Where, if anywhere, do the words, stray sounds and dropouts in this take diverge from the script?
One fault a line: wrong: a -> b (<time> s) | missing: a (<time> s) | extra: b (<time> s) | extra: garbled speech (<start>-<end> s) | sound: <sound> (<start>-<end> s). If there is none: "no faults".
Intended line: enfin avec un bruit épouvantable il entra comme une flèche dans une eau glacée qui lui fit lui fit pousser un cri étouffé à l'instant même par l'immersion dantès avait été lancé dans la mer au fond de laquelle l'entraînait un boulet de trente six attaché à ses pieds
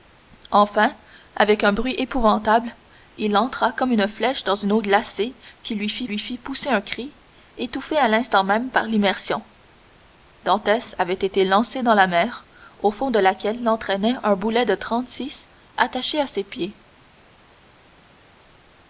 no faults